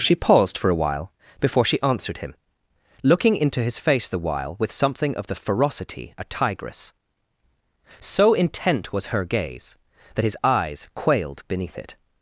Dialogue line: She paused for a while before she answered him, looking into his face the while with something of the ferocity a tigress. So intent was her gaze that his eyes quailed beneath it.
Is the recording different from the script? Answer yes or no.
no